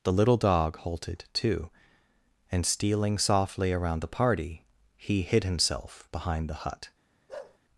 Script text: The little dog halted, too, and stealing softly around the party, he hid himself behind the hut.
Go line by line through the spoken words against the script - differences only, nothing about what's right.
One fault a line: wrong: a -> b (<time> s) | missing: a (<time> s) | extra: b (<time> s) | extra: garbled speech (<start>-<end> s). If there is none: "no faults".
no faults